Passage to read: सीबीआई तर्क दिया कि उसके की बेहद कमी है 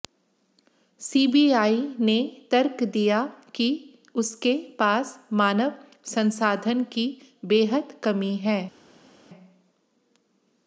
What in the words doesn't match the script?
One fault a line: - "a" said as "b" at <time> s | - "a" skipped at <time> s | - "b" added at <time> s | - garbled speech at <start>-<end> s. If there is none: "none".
- "ने" added at 2.0 s
- "पास मानव संसाधन" added at 4.8 s